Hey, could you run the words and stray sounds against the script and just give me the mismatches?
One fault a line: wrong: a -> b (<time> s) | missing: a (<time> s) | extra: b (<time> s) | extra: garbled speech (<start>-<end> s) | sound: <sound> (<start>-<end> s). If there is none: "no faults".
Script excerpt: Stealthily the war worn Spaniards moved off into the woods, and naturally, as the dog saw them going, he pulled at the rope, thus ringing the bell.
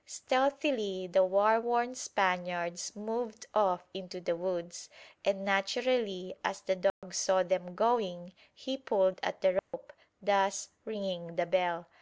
sound: dropout (6.9-7.0 s)
sound: dropout (9.6-9.7 s)